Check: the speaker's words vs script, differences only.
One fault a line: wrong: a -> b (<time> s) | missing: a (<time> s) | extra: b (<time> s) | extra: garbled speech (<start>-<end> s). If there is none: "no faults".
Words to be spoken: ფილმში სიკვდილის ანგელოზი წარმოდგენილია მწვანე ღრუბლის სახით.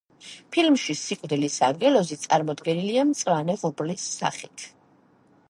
no faults